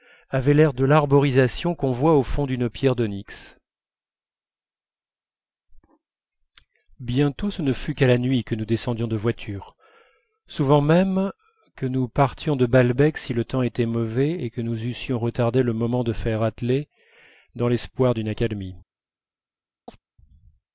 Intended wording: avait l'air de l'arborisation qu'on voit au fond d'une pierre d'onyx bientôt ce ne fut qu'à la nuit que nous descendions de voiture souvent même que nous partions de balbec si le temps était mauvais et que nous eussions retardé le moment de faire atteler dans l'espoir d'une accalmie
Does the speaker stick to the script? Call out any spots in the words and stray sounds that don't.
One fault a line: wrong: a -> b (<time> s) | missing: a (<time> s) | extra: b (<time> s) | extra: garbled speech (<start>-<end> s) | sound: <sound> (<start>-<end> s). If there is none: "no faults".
sound: chirp (19.9-20.0 s)